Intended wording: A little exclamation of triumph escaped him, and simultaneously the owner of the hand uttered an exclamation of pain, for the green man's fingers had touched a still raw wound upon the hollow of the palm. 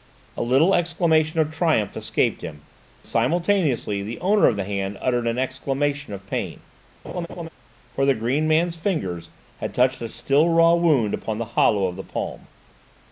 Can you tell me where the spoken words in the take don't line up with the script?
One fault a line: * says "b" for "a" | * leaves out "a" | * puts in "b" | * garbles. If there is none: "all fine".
* leaves out "and"